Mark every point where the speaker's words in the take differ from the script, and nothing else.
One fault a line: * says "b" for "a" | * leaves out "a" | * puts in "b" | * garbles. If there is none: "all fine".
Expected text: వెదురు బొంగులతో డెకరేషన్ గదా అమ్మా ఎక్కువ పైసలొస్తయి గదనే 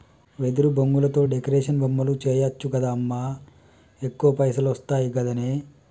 * puts in "బొమ్మలు చేయచ్చు"